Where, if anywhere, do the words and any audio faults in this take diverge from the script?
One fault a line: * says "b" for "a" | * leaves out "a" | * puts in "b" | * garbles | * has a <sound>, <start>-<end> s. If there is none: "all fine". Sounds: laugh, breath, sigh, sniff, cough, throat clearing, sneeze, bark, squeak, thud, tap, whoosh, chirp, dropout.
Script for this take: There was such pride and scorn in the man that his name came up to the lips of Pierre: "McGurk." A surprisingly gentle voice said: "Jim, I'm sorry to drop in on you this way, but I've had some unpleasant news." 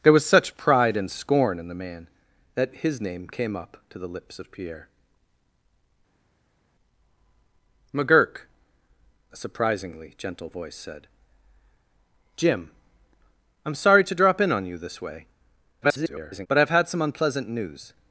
* garbles